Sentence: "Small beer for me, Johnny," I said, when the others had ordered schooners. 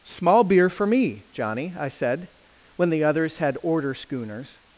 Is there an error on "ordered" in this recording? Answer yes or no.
yes